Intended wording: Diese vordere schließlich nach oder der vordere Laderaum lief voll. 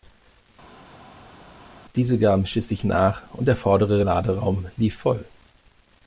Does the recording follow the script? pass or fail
fail